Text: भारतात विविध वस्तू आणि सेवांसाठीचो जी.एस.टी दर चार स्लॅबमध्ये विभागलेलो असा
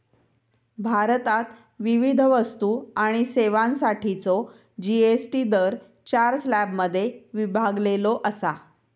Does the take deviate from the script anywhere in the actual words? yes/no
no